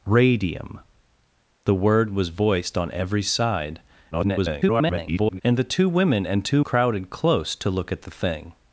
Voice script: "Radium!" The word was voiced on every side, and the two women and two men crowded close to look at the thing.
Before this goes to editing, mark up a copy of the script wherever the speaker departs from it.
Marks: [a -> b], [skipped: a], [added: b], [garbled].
"Radium!" The word was voiced on every side, [garbled] and the two women and two [skipped: men] crowded close to look at the thing.